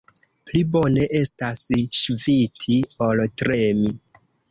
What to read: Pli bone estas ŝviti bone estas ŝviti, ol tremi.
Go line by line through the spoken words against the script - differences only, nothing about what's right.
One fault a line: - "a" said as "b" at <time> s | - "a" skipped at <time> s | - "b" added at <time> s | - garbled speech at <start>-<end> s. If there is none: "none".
- "bone estas ŝviti" skipped at 2.8 s